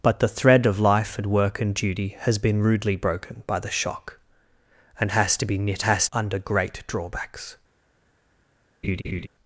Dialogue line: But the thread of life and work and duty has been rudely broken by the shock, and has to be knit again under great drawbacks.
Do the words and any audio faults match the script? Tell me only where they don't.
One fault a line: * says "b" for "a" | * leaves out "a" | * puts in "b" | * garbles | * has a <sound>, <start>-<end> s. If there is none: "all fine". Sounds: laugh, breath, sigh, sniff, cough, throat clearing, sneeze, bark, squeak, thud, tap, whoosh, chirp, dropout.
* says "has" for "again"
* has a laugh, 8.8-9.3 s